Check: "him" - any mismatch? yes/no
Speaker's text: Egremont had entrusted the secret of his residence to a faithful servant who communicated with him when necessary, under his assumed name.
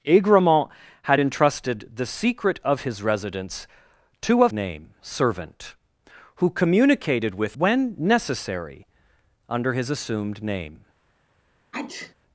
yes